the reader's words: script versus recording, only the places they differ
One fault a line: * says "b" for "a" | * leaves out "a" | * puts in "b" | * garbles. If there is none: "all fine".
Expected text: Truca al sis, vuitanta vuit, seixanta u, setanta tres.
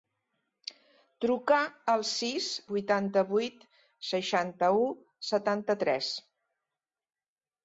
all fine